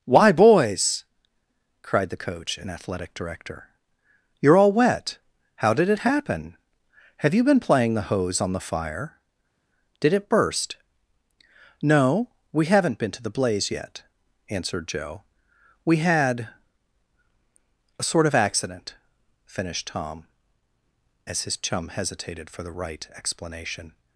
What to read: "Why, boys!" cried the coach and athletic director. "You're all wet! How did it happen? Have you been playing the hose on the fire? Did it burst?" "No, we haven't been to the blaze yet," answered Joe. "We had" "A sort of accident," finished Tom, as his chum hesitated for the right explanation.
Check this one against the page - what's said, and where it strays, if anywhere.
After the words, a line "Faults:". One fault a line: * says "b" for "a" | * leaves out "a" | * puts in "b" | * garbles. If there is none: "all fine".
"Why, boys!" cried the coach and athletic director. "You're all wet! How did it happen? Have you been playing the hose on the fire? Did it burst?" "No, we haven't been to the blaze yet," answered Joe. "We had" "A sort of accident," finished Tom, as his chum hesitated for the right explanation.
Faults:
all fine